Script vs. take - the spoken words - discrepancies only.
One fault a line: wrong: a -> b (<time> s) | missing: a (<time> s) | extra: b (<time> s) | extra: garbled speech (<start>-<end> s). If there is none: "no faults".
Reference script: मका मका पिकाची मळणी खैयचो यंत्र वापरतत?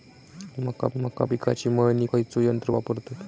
no faults